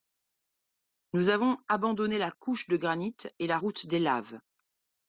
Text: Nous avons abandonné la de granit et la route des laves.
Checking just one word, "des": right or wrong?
right